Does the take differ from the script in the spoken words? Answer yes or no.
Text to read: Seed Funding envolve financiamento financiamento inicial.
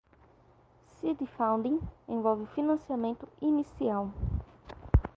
yes